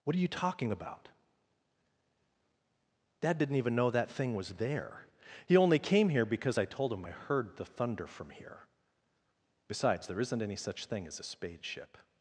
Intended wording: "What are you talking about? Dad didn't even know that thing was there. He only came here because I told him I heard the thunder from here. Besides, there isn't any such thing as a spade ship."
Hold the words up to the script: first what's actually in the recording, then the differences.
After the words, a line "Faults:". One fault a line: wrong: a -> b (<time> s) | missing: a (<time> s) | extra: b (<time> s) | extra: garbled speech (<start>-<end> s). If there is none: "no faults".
"What are you talking about? Dad didn't even know that thing was there. He only came here because I told him I heard the thunder from here. Besides, there isn't any such thing as a spade ship."
Faults:
no faults